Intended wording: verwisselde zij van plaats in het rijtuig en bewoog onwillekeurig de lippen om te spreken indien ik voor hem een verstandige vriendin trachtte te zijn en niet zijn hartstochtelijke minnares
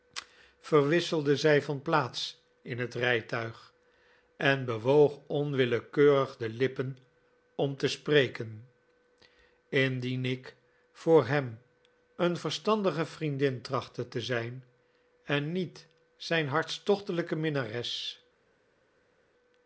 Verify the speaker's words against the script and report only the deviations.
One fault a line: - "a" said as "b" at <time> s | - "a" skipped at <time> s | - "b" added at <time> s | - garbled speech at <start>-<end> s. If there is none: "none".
none